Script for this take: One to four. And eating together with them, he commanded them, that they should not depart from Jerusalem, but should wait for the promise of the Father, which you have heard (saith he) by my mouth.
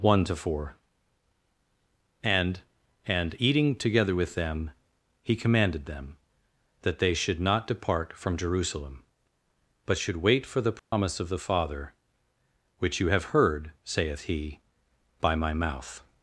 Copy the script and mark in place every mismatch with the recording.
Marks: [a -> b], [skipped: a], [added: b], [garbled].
One to four. And [added: And] eating together with them, he commanded them, that they should not depart from Jerusalem, but should wait for the promise of the Father, which you have heard (saith he) by my mouth.